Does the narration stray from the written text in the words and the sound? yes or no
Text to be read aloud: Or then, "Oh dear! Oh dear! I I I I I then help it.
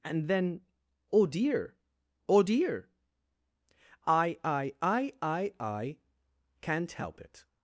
yes